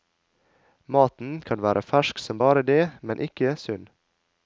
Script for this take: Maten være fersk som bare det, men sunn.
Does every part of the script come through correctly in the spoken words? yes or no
no